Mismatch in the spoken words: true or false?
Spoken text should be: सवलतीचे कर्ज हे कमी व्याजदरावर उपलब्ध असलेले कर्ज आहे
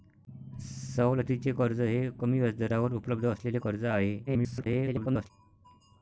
true